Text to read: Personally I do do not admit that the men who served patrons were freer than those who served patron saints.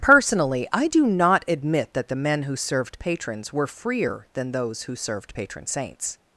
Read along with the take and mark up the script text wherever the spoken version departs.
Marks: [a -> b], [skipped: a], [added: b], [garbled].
Personally I do [skipped: do] not admit that the men who served patrons were freer than those who served patron saints.